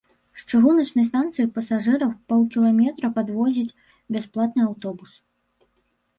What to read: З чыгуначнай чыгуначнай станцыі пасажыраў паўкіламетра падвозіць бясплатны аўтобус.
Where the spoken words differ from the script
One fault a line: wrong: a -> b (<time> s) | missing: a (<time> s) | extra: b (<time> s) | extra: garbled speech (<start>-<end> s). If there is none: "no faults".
missing: чыгуначнай (1.1 s)